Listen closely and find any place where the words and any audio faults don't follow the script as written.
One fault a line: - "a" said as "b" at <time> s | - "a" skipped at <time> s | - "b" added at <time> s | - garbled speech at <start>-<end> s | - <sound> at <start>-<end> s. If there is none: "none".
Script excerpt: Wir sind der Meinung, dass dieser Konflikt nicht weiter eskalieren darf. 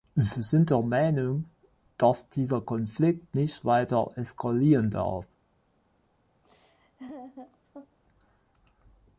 - laugh at 6.4-8.0 s